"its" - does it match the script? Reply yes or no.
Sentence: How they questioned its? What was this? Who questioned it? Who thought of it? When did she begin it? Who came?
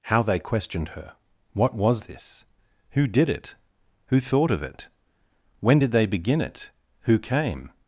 no